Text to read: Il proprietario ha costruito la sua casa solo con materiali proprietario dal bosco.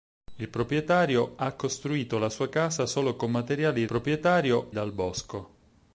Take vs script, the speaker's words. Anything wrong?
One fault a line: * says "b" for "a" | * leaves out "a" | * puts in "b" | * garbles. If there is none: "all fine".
all fine